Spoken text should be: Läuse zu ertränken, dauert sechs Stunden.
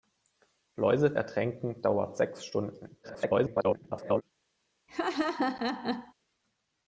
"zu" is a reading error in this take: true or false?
true